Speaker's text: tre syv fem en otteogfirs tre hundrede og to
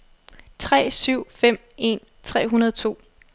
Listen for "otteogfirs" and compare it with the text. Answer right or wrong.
wrong